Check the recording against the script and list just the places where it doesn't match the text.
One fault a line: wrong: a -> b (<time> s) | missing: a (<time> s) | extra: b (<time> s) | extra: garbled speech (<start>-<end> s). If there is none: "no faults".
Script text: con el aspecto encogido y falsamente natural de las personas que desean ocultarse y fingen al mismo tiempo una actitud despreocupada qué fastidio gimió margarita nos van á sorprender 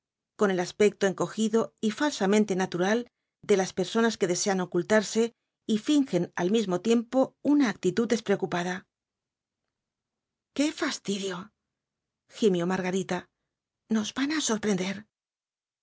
no faults